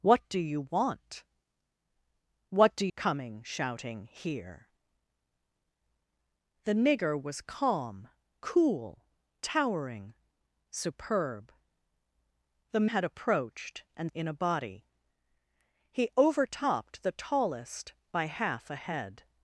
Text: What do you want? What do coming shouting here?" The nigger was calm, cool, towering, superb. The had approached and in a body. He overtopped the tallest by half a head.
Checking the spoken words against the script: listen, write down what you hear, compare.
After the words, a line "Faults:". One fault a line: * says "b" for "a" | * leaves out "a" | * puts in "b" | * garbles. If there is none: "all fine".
What do you want? What do coming shouting here?" The nigger was calm, cool, towering, superb. The had approached and in a body. He overtopped the tallest by half a head.
Faults:
all fine